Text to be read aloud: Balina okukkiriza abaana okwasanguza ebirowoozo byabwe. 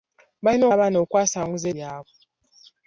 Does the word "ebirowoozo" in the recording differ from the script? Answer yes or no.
yes